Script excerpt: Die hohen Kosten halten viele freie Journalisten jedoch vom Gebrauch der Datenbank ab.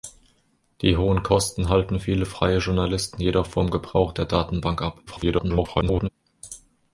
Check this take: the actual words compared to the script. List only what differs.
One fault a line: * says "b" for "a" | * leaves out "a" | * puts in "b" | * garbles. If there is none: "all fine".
* garbles